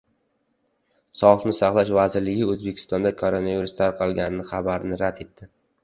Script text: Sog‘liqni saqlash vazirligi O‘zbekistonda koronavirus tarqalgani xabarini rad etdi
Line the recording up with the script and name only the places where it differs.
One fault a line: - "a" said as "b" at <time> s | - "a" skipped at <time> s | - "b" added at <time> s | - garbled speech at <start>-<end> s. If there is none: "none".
none